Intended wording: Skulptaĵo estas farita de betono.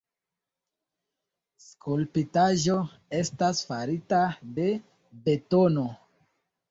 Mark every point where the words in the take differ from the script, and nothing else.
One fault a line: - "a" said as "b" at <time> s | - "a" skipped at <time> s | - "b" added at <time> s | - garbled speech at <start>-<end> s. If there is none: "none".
none